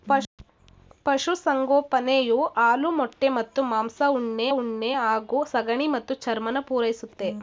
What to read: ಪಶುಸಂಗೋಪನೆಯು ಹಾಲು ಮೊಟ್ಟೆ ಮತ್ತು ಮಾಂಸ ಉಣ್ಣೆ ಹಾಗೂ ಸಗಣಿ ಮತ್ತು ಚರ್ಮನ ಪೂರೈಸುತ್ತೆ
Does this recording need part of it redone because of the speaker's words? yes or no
yes